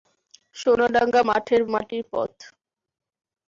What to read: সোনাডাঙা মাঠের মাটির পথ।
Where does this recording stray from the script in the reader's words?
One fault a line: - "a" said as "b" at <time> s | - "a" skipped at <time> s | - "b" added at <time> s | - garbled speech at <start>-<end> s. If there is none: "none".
none